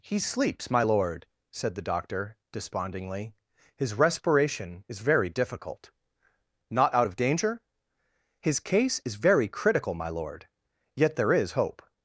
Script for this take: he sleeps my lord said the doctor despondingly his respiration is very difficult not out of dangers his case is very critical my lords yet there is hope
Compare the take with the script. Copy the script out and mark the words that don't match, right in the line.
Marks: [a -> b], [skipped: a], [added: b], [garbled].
he sleeps my lord said the doctor despondingly his respiration is very difficult not out of [dangers -> danger] his case is very critical my [lords -> lord] yet there is hope